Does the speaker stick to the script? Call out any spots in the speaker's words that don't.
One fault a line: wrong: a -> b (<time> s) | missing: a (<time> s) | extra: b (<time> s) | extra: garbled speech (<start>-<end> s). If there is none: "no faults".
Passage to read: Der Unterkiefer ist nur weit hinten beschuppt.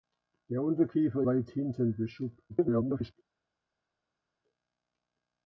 missing: ist nur (1.2 s)
extra: garbled speech (2.5-3.1 s)